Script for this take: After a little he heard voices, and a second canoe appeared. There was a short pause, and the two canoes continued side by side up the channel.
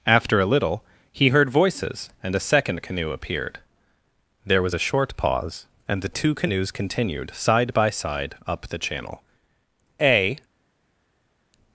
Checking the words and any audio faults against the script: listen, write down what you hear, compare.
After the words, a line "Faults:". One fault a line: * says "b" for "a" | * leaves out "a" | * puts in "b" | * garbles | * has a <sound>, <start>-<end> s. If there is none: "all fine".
After a little he heard voices, and a second canoe appeared. There was a short pause, and the two canoes continued side by side up the channel. A
Faults:
* puts in "A"